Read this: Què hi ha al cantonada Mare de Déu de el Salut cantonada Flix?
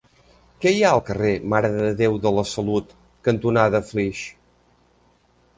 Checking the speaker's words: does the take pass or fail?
fail